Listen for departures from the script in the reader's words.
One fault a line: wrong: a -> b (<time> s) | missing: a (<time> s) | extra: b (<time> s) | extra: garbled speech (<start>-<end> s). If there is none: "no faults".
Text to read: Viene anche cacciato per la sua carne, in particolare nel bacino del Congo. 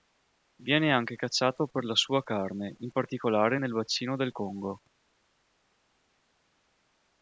no faults